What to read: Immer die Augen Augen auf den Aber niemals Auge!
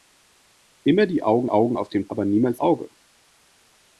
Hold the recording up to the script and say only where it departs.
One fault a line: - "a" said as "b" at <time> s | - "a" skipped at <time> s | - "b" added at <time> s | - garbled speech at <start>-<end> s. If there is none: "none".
none